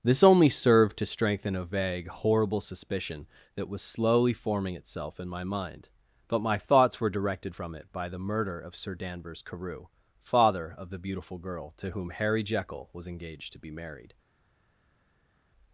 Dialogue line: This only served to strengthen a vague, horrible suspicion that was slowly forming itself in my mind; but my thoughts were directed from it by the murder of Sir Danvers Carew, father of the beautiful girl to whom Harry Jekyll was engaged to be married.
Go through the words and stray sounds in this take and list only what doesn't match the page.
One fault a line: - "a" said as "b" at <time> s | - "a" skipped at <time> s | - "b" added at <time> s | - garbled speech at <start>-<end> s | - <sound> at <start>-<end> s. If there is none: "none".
none